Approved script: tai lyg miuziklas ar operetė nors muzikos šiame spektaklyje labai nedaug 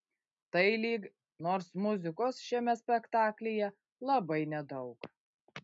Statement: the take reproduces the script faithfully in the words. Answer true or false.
false